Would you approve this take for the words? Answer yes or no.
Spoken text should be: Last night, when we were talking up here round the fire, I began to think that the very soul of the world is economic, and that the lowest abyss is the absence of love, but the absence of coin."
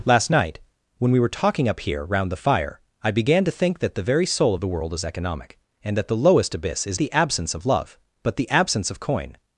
yes